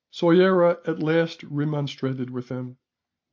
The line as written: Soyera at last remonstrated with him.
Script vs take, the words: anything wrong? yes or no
no